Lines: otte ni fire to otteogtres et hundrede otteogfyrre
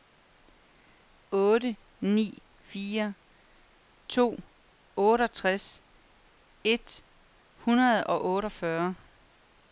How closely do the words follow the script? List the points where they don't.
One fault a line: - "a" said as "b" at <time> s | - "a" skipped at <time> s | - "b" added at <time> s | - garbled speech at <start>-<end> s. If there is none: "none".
- "og" added at 8.0 s